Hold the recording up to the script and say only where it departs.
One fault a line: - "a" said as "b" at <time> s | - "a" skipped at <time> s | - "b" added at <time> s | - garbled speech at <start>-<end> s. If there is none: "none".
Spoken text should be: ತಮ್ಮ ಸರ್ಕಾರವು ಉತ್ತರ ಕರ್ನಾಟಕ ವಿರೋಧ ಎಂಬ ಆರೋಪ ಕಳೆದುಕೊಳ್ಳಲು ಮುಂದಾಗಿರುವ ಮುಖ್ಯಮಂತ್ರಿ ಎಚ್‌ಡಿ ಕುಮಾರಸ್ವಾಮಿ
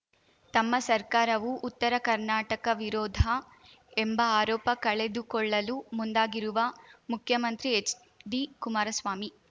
none